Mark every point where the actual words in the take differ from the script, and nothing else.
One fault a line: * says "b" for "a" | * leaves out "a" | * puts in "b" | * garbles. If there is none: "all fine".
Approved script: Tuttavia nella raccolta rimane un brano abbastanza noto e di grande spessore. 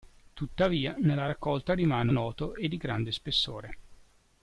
* leaves out "un brano abbastanza"